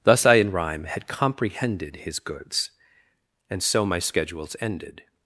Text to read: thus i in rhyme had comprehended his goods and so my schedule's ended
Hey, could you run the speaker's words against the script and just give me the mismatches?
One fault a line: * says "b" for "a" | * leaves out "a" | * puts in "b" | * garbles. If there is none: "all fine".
all fine